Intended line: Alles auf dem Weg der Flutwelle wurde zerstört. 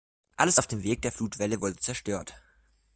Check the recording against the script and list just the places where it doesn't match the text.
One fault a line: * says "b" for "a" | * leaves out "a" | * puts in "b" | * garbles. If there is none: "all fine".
all fine